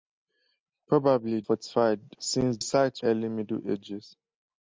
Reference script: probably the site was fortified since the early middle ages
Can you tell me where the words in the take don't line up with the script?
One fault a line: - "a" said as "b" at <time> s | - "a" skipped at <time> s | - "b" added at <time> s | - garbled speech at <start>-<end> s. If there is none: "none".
- "the site was" skipped at 1.4 s
- "the" said as "site" at 2.6 s